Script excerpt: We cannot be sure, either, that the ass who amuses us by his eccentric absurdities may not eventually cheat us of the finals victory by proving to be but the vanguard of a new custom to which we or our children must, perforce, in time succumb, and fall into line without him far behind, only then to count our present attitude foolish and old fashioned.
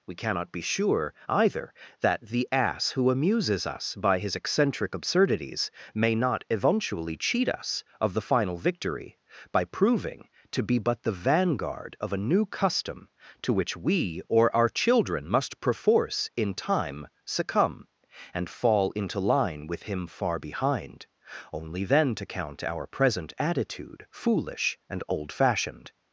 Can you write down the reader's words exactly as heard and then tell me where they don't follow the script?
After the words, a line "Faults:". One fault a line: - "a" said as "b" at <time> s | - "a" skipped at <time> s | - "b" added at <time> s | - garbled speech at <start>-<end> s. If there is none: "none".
We cannot be sure, either, that the ass who amuses us by his eccentric absurdities may not eventually cheat us of the final victory by proving to be but the vanguard of a new custom to which we or our children must, perforce, in time succumb, and fall into line with him far behind, only then to count our present attitude foolish and old fashioned.
Faults:
- "finals" said as "final" at 8.2 s
- "without" said as "with" at 19.7 s